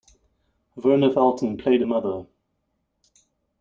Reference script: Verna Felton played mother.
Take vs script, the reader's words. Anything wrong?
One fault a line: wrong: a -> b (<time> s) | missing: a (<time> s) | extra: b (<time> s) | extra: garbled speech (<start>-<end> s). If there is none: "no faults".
no faults